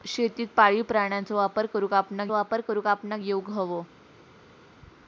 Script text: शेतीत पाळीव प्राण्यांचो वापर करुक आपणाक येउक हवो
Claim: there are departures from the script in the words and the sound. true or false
true